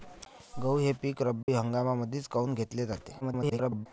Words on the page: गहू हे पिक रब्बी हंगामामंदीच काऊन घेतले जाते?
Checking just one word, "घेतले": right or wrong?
right